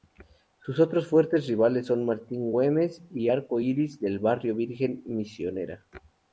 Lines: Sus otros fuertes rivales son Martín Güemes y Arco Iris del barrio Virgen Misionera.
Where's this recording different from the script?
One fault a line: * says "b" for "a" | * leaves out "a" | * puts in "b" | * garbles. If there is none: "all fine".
all fine